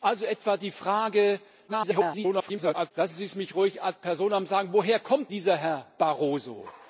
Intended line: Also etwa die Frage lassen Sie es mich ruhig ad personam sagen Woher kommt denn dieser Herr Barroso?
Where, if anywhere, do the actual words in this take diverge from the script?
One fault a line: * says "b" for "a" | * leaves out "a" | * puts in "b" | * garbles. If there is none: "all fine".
* garbles
* leaves out "denn"